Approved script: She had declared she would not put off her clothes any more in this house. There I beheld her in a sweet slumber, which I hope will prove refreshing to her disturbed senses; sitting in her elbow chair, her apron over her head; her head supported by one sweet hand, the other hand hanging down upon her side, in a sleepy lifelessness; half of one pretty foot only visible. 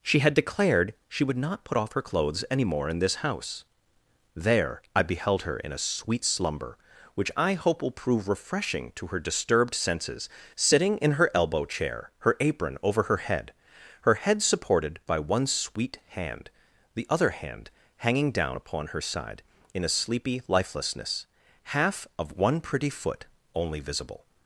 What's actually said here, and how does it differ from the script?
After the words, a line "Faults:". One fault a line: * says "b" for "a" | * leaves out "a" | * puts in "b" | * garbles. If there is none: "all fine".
She had declared she would not put off her clothes any more in this house. There I beheld her in a sweet slumber, which I hope will prove refreshing to her disturbed senses; sitting in her elbow chair, her apron over her head; her head supported by one sweet hand, the other hand hanging down upon her side, in a sleepy lifelessness; half of one pretty foot only visible.
Faults:
all fine